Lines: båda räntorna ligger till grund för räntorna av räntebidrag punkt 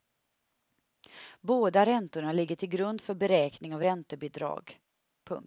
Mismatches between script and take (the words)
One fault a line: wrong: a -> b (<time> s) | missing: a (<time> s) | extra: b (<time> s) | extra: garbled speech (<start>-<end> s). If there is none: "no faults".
wrong: räntorna -> beräkning (3.1 s)